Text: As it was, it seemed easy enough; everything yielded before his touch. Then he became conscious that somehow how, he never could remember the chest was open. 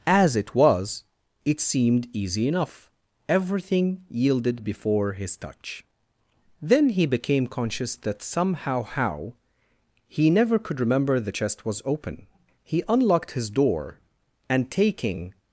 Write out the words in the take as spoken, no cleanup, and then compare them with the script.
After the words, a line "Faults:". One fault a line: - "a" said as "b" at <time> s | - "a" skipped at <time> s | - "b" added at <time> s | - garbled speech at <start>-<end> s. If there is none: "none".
As it was, it seemed easy enough; everything yielded before his touch. Then he became conscious that somehow how, he never could remember the chest was open. He unlocked his door, and, taking
Faults:
- "He unlocked his door and taking" added at 12.6 s